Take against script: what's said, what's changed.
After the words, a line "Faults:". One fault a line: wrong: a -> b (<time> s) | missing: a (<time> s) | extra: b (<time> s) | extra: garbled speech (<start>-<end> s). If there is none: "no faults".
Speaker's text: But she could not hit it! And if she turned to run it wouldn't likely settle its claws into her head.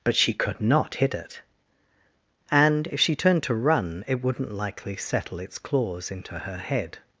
But she could not hit it! And if she turned to run it wouldn't likely settle its claws into her head.
Faults:
no faults